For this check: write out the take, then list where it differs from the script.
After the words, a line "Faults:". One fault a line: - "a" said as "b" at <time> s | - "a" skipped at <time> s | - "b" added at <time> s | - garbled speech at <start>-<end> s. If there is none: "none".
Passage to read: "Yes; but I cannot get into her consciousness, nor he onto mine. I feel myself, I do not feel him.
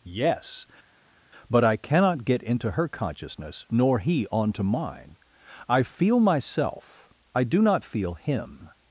"Yes; but I cannot get into her consciousness, nor he onto mine. I feel myself, I do not feel him.
Faults:
none